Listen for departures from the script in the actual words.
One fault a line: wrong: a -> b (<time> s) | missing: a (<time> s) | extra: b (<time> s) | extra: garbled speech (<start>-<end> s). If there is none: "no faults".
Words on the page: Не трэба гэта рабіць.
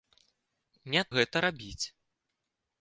missing: трэба (1.0 s)